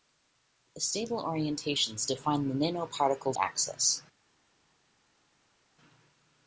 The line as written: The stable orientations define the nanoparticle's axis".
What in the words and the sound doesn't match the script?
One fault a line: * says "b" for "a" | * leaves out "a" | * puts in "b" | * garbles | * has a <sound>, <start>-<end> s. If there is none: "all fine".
all fine